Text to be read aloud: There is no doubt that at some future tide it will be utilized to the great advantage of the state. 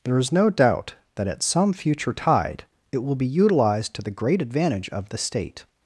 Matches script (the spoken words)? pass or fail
pass